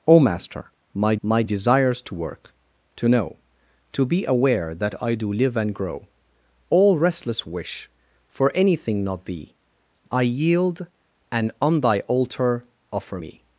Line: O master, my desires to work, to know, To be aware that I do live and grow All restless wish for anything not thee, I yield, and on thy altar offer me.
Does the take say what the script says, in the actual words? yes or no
no